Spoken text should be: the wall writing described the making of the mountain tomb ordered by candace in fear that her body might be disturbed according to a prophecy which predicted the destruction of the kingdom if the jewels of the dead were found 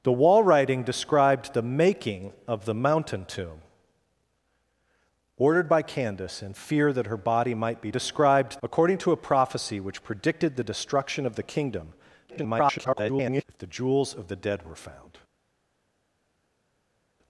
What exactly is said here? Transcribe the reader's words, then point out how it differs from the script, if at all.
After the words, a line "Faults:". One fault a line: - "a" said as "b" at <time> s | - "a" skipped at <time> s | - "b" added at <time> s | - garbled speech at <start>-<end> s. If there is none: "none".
the wall writing described the making of the mountain tomb ordered by candace in fear that her body might be described according to a prophecy which predicted the destruction of the kingdom [garbled] if the jewels of the dead were found
Faults:
- "disturbed" said as "described" at 7.9 s
- garbled speech at 12.3-13.4 s